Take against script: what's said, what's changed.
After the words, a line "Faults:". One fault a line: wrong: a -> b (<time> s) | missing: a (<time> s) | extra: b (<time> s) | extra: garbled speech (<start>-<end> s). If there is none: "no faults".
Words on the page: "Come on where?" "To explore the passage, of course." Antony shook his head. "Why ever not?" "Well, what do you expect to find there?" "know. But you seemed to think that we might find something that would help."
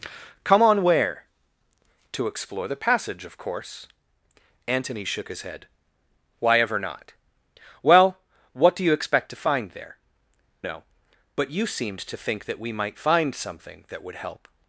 "Come on where?" "To explore the passage, of course." Antony shook his head. "Why ever not?" "Well, what do you expect to find there?" "know. But you seemed to think that we might find something that would help."
Faults:
no faults